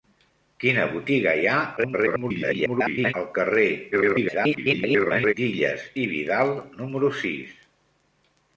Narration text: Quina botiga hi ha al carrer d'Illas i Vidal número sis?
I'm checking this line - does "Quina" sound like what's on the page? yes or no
yes